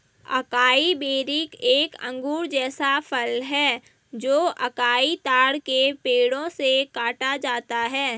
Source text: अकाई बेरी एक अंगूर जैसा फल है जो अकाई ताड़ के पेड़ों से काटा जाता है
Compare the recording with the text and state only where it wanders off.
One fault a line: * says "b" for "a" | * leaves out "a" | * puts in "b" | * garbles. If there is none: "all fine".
all fine